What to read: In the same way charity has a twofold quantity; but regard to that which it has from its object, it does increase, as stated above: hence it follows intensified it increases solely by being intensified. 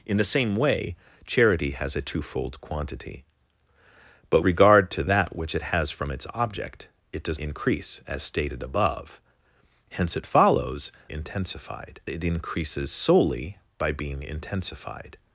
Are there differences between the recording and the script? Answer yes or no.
no